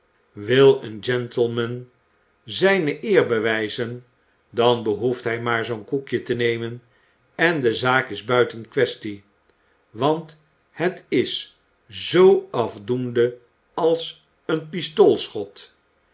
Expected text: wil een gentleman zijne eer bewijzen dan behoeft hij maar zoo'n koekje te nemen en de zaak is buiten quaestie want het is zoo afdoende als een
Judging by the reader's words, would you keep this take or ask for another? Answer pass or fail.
pass